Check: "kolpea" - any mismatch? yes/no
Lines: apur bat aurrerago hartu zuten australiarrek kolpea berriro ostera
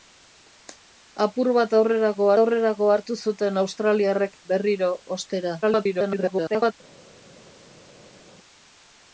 yes